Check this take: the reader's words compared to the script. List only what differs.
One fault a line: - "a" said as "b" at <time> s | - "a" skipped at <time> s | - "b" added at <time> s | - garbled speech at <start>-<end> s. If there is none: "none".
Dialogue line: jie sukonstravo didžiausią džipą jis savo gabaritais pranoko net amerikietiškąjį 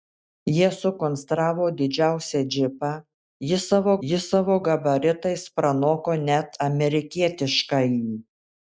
- "jis savo" added at 4.1 s